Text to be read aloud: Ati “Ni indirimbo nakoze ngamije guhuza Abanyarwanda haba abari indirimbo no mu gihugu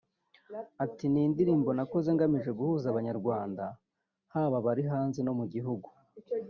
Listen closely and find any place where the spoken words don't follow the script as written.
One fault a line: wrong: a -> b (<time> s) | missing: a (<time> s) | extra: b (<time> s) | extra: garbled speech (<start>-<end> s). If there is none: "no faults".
wrong: indirimbo -> hanze (4.9 s)